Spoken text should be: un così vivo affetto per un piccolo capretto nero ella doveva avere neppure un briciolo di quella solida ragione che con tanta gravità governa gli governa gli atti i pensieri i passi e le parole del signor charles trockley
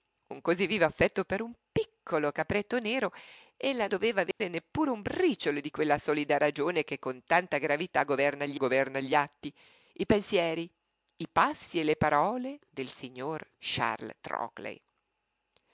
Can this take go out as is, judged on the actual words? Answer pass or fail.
pass